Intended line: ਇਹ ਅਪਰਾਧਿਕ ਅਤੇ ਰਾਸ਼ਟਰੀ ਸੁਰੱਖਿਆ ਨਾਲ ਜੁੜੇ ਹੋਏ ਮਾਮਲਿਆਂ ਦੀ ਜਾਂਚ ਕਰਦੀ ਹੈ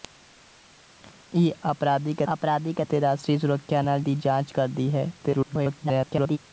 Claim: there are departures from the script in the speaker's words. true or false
true